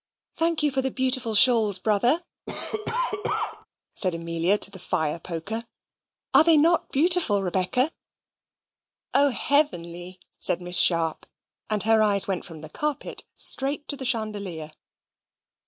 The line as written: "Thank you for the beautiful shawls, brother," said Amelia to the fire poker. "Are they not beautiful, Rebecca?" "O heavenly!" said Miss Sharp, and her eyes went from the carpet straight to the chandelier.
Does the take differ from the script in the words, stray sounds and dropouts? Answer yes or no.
yes